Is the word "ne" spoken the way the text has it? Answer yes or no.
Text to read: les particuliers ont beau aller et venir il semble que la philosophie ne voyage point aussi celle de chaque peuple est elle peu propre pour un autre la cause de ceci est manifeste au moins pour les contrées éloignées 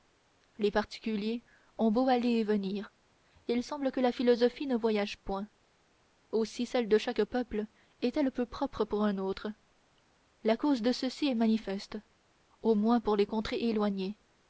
yes